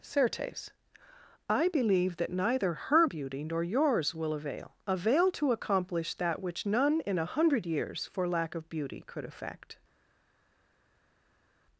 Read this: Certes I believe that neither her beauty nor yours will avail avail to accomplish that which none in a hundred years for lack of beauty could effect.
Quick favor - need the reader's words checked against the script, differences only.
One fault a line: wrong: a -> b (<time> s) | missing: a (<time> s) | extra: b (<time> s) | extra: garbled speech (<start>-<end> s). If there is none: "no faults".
no faults